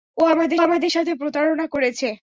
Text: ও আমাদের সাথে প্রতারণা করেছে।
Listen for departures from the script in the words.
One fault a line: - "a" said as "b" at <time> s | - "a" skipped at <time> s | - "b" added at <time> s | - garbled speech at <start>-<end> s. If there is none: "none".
- "আমাদের" added at 0.6 s